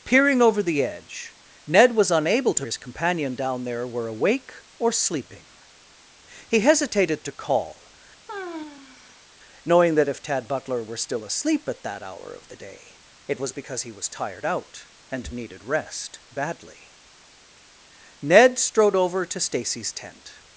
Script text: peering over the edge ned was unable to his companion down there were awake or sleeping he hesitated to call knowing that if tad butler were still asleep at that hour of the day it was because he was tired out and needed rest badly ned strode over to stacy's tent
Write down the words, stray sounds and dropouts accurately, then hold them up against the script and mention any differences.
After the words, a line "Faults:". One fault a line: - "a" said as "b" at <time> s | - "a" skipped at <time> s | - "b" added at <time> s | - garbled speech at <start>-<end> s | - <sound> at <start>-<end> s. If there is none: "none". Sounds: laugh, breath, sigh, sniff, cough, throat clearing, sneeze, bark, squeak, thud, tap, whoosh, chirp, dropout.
peering over the edge ned was unable to his companion down there were awake or sleeping he hesitated to call knowing that if tad butler were still asleep at that hour of the day it was because he was tired out and needed rest badly ned strode over to stacy's tent
Faults:
- sigh at 8.3-9.2 s